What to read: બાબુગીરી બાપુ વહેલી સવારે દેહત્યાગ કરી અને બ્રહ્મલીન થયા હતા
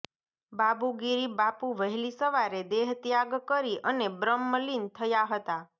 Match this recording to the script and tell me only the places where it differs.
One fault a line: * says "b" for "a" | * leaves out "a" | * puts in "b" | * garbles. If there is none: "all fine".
all fine